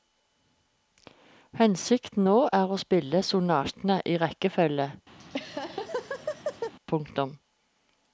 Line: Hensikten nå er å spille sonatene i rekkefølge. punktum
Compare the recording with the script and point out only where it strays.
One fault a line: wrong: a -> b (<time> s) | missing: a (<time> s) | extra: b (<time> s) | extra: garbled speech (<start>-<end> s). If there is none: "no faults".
no faults